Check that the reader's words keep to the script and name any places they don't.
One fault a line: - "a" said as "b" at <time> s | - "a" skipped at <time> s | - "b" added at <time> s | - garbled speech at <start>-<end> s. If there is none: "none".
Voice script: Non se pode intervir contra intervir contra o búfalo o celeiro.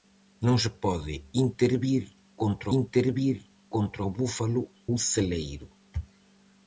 none